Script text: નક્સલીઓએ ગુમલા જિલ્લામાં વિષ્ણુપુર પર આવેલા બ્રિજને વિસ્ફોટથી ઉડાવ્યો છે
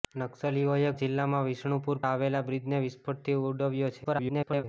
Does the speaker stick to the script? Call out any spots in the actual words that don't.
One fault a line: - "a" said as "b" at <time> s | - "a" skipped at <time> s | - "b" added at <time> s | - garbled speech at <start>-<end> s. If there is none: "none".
- "ગુમલા" skipped at 0.9 s
- "પર" skipped at 2.0 s
- garbled speech at 4.0-4.6 s